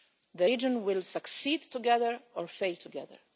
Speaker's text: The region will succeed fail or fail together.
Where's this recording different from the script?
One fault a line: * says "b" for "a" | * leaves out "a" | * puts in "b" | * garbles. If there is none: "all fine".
* says "together" for "fail"